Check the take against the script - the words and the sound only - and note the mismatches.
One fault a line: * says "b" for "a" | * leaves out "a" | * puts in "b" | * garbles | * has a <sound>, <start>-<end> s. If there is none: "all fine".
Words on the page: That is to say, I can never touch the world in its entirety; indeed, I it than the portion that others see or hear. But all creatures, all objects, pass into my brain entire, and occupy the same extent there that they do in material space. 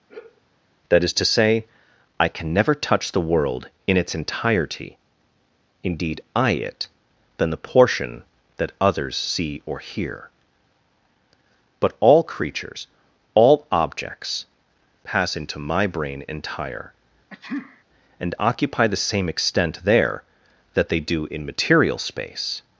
* has a sigh, 0.1-0.4 s
* has a sneeze, 17.3-17.8 s